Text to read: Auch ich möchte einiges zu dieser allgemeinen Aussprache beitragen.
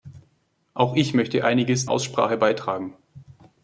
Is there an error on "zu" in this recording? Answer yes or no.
yes